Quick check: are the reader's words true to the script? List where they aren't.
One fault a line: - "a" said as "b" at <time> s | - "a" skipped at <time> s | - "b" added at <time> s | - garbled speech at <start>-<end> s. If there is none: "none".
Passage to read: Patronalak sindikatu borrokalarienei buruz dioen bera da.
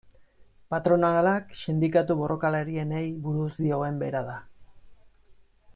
none